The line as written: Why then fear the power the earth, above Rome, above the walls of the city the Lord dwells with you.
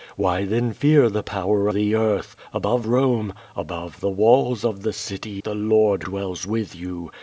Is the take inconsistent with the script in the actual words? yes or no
no